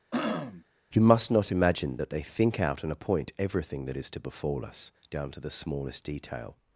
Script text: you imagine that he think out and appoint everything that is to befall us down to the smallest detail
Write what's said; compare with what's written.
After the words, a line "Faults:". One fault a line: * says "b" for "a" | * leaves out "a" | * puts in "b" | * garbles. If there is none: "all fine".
you must not imagine that they think out and appoint everything that is to befall us down to the smallest detail
Faults:
* puts in "must not"
* says "they" for "he"